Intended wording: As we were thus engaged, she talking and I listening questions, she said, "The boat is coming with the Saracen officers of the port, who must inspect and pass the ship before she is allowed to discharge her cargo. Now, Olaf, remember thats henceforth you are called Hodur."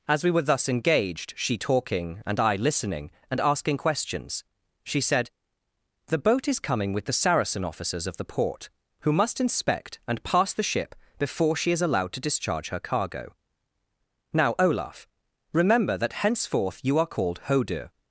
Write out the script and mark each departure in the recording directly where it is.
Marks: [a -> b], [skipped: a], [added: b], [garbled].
As we were thus engaged, she talking and I listening [added: and asking] questions, she said, "The boat is coming with the Saracen officers of the port, who must inspect and pass the ship before she is allowed to discharge her cargo. Now, Olaf, remember [thats -> that] henceforth you are called Hodur."